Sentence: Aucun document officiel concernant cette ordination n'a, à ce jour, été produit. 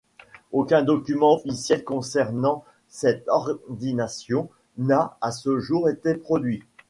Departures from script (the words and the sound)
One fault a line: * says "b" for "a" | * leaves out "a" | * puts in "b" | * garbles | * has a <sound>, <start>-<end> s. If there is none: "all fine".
all fine